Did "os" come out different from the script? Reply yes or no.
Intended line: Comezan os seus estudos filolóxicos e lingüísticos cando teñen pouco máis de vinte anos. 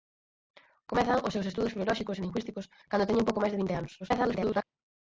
no